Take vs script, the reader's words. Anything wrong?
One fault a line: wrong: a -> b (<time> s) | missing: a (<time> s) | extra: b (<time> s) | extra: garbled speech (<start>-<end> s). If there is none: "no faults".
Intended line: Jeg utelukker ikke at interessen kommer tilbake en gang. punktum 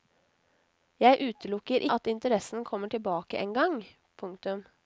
missing: ikke (1.8 s)